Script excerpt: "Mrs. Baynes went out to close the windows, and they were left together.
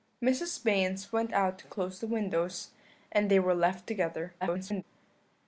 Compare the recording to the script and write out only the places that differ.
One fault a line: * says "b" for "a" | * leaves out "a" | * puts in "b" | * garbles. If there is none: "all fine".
* garbles